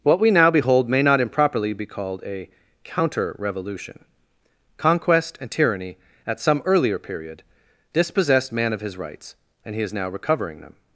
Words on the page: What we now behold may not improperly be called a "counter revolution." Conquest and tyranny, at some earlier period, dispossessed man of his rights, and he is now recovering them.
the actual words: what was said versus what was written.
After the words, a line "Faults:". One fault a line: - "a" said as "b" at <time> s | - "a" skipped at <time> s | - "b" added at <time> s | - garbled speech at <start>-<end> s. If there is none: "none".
What we now behold may not improperly be called a "counter revolution." Conquest and tyranny, at some earlier period, dispossessed man of his rights, and he is now recovering them.
Faults:
none